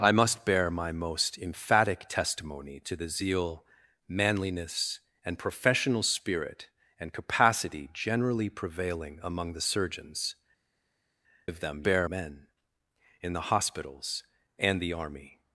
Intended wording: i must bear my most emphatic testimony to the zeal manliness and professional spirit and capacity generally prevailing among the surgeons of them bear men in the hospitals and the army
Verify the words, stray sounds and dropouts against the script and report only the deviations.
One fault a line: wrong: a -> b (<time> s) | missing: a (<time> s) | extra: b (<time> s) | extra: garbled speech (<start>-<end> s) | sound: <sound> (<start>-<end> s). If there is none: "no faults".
no faults